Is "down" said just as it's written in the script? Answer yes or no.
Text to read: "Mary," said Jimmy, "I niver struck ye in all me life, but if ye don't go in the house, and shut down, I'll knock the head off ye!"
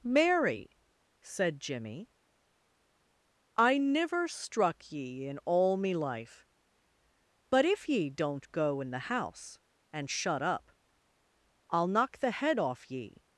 no